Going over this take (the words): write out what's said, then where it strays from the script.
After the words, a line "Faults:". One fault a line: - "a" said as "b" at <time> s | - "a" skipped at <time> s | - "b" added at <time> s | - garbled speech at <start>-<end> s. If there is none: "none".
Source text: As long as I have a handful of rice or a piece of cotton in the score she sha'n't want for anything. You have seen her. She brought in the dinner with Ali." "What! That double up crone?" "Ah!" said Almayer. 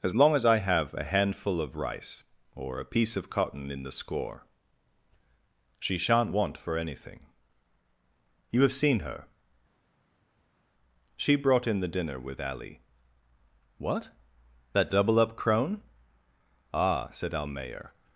As long as I have a handful of rice or a piece of cotton in the score she sha'n't want for anything. You have seen her. She brought in the dinner with Ali." "What! That double up crone?" "Ah!" said Almayer.
Faults:
none